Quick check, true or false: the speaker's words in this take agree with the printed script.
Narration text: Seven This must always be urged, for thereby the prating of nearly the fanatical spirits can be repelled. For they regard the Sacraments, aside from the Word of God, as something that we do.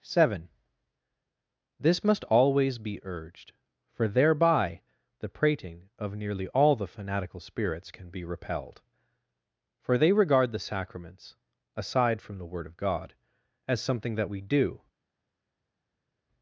false